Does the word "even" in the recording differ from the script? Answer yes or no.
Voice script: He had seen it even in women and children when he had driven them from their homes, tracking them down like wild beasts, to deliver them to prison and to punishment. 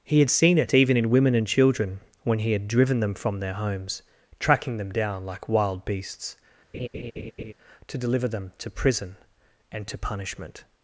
no